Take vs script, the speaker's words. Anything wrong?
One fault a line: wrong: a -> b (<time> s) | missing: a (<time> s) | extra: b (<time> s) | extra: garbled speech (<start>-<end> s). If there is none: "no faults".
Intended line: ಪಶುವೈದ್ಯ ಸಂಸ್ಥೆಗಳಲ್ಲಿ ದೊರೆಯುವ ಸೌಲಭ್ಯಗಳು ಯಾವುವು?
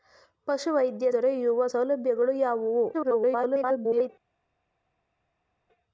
missing: ಸಂಸ್ಥೆಗಳಲ್ಲಿ (1.1 s)
extra: garbled speech (2.9-4.1 s)